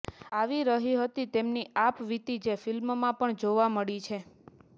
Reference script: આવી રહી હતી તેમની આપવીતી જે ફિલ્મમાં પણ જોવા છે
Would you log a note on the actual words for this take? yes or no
yes